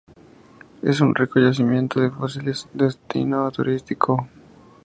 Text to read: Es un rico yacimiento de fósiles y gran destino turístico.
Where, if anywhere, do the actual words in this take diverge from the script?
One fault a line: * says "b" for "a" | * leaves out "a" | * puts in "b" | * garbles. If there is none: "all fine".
* leaves out "y gran"